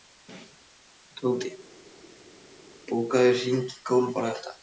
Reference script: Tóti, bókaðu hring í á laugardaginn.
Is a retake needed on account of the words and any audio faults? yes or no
yes